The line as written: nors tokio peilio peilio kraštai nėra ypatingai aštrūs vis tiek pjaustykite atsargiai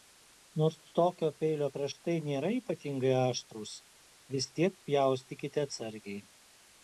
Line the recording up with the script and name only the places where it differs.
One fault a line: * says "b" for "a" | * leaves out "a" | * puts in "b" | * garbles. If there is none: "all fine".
* leaves out "peilio"